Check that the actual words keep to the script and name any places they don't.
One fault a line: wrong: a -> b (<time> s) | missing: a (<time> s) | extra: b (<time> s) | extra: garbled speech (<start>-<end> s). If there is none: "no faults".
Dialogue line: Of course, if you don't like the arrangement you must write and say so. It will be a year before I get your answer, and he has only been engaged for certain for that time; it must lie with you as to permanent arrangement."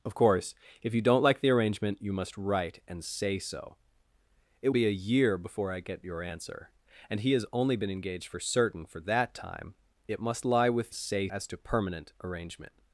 missing: will (4.7 s)
wrong: you -> say (10.9 s)